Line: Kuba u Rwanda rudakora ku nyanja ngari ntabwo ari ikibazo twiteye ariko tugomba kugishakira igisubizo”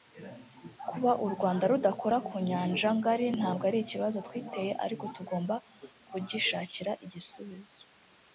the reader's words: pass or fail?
pass